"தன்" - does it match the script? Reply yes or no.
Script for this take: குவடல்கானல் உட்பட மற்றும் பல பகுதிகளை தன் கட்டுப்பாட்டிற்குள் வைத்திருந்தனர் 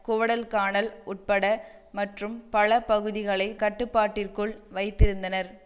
no